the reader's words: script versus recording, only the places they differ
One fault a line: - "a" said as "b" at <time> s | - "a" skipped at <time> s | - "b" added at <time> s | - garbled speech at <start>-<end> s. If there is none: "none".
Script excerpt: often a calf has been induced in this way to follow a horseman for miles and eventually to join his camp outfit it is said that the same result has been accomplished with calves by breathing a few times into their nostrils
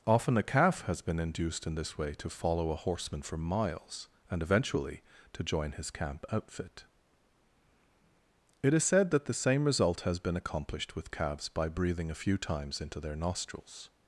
none